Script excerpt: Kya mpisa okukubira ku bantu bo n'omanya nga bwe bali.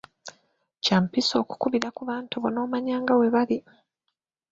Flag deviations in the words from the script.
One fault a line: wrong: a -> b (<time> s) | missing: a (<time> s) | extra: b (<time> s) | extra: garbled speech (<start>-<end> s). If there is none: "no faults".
no faults